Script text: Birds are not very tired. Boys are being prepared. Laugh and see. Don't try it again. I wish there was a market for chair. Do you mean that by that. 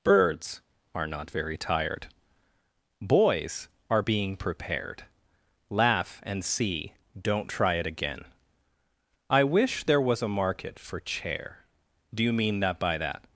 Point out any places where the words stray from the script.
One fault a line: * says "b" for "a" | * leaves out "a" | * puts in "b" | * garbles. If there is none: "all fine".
all fine